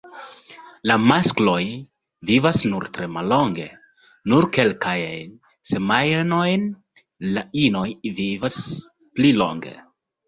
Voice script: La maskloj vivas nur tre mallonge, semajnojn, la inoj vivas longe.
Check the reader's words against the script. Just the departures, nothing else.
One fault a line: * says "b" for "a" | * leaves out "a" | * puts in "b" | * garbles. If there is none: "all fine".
* puts in "nur kelkajn"
* puts in "pli"